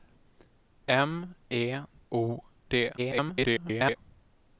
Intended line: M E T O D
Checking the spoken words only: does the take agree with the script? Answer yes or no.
no